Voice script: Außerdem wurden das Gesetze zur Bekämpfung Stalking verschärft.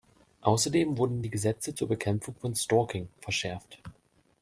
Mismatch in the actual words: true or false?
true